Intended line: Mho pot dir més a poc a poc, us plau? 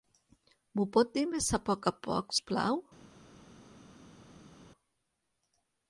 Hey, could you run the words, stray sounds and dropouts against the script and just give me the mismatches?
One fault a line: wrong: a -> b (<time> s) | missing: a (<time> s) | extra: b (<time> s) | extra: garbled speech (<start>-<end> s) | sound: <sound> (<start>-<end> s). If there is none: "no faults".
no faults